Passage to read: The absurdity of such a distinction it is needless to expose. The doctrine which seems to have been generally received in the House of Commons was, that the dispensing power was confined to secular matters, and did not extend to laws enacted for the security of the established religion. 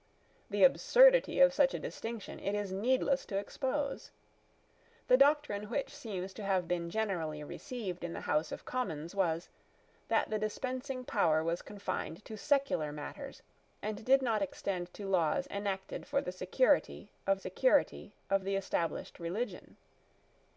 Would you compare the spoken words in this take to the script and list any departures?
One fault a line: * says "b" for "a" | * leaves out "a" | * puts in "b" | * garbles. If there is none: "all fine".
* puts in "security of"